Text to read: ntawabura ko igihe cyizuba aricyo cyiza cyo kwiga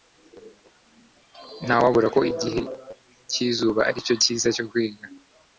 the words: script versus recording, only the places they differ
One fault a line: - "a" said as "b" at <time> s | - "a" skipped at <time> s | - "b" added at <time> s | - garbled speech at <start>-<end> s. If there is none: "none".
none